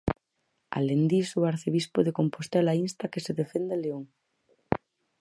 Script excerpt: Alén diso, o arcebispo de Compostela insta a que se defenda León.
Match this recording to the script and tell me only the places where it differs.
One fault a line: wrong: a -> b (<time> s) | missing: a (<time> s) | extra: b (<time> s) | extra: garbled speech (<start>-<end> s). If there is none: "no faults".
no faults